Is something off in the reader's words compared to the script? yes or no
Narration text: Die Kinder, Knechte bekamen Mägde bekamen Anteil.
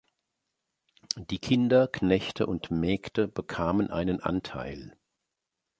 yes